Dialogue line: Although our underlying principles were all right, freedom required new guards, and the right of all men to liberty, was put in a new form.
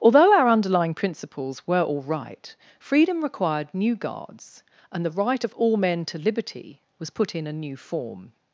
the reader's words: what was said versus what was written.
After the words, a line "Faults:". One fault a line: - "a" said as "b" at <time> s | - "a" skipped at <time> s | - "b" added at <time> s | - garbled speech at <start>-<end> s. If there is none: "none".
Although our underlying principles were all right, freedom required new guards, and the right of all men to liberty, was put in a new form.
Faults:
none